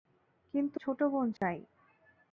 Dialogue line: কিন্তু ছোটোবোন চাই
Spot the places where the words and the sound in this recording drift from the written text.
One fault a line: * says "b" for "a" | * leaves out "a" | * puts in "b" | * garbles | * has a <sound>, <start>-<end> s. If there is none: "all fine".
* has a dropout, 1.4-1.4 s